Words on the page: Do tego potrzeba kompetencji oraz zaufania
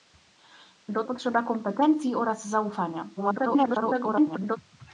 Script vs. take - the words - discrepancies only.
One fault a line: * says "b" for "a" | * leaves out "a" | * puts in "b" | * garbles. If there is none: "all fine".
* leaves out "tego"
* garbles